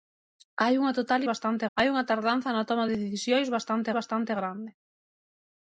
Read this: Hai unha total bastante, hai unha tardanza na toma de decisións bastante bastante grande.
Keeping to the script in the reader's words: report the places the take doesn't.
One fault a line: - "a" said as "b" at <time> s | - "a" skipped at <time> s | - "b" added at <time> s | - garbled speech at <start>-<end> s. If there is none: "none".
none